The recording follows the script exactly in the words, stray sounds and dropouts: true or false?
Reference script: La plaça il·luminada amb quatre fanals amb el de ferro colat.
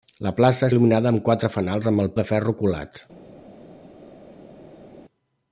true